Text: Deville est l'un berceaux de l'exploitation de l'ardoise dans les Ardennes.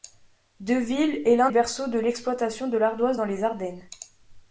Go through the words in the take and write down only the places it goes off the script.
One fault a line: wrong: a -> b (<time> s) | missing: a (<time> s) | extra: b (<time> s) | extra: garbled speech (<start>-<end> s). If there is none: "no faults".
no faults